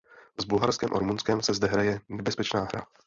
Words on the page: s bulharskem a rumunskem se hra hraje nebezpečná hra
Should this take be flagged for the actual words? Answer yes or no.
yes